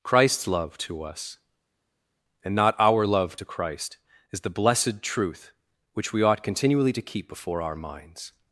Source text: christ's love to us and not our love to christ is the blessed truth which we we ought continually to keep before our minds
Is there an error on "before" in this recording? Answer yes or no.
no